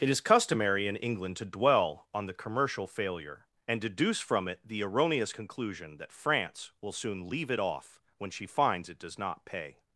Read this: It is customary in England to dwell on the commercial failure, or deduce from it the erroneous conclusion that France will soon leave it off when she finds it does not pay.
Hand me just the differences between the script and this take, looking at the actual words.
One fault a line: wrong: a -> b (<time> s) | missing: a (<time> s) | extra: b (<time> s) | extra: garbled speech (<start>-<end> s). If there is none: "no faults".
wrong: or -> and (3.7 s)